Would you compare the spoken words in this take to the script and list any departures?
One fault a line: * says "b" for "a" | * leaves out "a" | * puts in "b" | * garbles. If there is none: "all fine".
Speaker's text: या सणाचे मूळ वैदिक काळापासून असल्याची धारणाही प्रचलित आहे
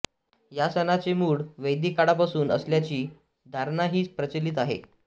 all fine